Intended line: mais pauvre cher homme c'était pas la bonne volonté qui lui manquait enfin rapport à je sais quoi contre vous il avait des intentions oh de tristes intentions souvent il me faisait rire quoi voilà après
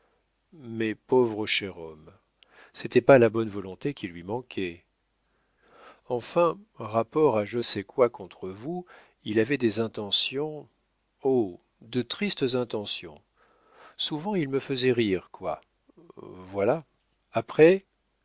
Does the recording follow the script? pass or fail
pass